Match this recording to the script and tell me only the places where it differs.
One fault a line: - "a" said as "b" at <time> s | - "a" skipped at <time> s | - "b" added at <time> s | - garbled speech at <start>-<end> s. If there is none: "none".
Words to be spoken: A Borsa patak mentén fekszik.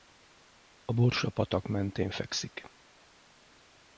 none